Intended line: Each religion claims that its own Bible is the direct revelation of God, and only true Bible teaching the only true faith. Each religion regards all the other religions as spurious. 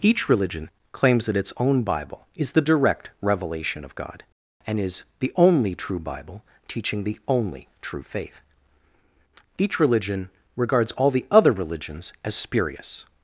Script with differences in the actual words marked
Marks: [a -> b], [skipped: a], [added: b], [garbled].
Each religion claims that its own Bible is the direct revelation of God, and [added: is the] only true Bible teaching the only true faith. Each religion regards all the other religions as spurious.